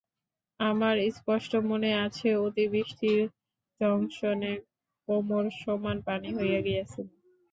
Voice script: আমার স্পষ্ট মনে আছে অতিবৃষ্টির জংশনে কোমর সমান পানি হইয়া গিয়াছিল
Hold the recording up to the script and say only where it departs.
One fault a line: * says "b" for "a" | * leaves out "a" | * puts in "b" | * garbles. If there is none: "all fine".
all fine